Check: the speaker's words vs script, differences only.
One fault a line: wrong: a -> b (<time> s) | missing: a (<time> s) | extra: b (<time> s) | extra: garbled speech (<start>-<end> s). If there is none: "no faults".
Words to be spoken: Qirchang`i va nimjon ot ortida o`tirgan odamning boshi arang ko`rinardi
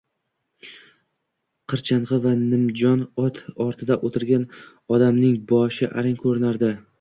no faults